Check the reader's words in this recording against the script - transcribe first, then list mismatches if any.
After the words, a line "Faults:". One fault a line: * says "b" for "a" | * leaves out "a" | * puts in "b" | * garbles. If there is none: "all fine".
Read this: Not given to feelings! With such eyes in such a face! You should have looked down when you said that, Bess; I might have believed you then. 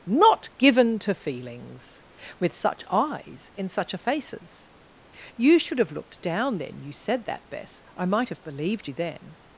Not given to feelings! With such eyes in such a faces! You should have looked down then you said that, Bess; I might have believed you then.
Faults:
* says "faces" for "face"
* says "then" for "when"